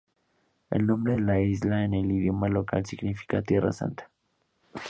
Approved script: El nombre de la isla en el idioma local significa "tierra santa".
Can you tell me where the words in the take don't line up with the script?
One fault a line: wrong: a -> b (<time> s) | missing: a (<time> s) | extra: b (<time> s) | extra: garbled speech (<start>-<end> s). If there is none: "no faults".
no faults